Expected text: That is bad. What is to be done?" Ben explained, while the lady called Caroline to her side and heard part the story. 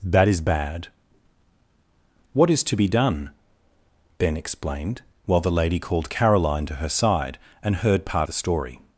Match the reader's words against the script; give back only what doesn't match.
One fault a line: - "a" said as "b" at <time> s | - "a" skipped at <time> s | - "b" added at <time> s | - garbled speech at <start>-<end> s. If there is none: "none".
none